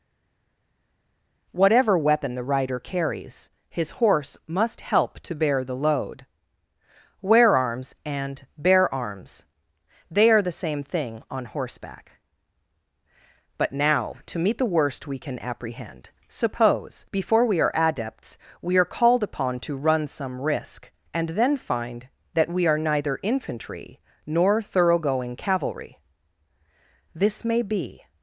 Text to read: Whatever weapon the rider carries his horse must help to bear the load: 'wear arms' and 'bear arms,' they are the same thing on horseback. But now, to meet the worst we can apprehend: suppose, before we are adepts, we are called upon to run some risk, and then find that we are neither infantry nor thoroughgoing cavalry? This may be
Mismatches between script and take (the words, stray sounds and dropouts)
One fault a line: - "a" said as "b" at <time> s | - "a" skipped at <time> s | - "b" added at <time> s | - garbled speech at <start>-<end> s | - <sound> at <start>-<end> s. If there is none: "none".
none